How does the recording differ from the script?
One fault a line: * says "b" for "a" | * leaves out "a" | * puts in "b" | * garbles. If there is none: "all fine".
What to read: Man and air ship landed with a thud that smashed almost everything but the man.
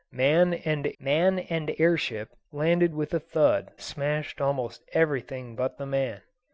* puts in "man and"
* leaves out "that"